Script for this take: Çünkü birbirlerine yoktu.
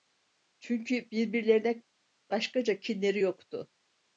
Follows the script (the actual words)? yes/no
no